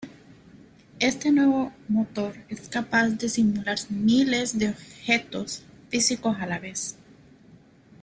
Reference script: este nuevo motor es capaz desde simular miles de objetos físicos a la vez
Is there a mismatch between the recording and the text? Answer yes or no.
yes